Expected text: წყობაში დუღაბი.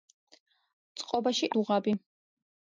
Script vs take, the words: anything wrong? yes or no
no